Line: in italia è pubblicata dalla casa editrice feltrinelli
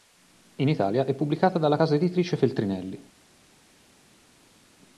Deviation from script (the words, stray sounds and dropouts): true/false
false